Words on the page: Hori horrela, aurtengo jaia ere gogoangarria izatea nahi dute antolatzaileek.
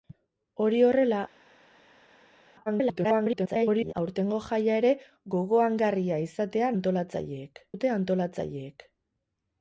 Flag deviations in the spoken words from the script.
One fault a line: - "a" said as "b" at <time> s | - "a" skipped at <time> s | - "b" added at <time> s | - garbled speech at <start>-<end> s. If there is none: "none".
- garbled speech at 2.7-3.9 s
- "nahi" said as "antolatzaileek" at 6.8 s